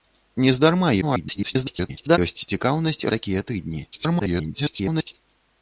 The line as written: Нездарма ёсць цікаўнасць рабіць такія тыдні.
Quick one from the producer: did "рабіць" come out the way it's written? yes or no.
no